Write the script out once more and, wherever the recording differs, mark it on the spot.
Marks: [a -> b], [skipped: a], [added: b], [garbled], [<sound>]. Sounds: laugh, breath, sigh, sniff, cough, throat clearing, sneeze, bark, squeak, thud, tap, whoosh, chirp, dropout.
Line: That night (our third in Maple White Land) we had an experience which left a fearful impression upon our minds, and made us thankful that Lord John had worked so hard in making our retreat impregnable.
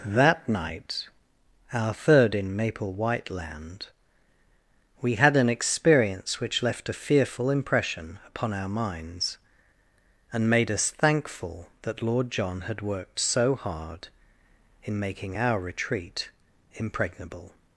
That night (our third in Maple White Land) we had an experience which left a fearful impression upon our minds, and made us thankful that Lord John had worked so hard in making our retreat impregnable.